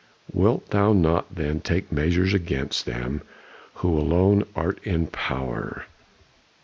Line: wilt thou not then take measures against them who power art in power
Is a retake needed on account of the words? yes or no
yes